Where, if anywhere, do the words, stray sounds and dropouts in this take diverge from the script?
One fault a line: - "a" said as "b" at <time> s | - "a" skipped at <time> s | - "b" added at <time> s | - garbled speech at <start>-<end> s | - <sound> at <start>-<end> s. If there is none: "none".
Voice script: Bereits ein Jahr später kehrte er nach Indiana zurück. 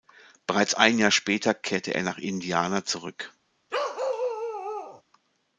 - bark at 3.7-5.0 s